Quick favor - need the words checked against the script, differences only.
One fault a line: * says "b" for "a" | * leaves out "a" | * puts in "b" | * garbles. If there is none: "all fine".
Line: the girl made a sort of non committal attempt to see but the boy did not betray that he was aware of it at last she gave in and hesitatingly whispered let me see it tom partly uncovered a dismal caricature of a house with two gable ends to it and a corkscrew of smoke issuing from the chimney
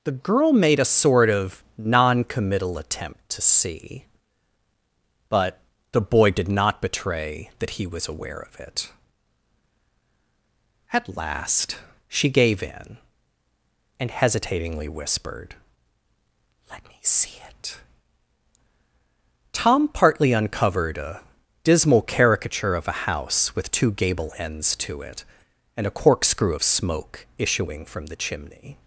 all fine